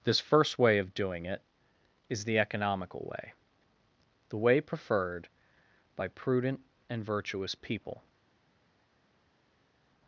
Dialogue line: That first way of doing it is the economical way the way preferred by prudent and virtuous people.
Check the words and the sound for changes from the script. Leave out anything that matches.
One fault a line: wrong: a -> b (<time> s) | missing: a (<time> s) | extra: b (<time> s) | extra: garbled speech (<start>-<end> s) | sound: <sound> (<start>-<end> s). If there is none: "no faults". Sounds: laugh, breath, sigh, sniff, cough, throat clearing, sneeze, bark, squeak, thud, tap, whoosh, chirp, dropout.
wrong: That -> This (0.0 s)